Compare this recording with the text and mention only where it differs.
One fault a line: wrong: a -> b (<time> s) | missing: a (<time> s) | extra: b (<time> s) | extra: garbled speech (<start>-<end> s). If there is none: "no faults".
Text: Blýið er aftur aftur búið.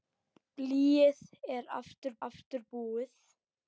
no faults